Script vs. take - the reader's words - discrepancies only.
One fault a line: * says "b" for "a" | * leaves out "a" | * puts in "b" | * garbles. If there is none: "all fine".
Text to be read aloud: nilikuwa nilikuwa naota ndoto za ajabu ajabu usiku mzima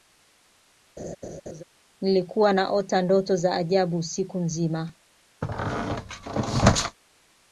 * leaves out "nilikuwa"
* leaves out "ajabu"